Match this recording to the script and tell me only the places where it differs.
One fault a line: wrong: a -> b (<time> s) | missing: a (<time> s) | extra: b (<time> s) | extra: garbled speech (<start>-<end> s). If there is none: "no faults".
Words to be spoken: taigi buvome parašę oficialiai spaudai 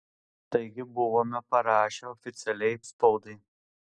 no faults